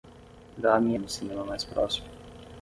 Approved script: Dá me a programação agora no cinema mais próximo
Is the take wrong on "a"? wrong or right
wrong